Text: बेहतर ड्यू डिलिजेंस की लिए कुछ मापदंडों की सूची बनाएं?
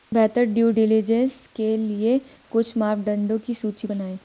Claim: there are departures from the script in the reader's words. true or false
true